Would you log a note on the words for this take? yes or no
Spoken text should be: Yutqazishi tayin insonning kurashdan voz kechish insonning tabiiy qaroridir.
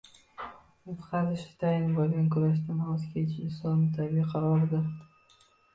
yes